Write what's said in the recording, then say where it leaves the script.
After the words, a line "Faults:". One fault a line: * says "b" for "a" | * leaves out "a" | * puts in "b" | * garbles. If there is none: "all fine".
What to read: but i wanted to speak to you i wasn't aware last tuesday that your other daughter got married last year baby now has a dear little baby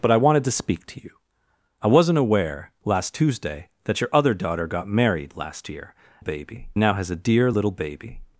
but i wanted to speak to you i wasn't aware last tuesday that your other daughter got married last year baby now has a dear little baby
Faults:
all fine